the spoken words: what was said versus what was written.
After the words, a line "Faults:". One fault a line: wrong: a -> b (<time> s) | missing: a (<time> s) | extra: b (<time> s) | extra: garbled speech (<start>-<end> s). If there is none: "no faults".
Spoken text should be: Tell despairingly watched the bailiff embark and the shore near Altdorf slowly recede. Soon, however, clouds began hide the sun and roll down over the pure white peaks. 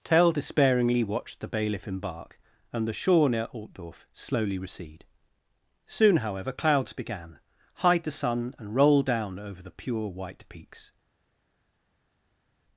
Tell despairingly watched the bailiff embark and the shore near Altdorf slowly recede. Soon, however, clouds began hide the sun and roll down over the pure white peaks.
Faults:
no faults